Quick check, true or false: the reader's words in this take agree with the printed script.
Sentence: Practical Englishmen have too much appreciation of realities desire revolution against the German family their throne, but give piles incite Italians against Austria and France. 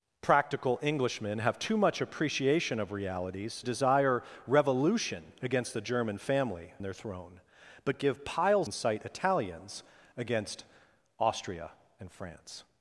true